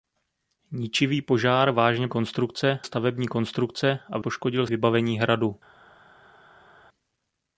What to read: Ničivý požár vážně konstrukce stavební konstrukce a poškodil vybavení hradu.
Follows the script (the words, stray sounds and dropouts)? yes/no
yes